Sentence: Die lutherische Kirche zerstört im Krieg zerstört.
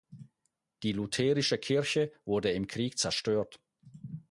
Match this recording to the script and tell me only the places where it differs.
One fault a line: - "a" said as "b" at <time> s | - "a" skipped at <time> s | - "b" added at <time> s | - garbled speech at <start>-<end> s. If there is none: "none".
- "zerstört" said as "wurde" at 2.2 s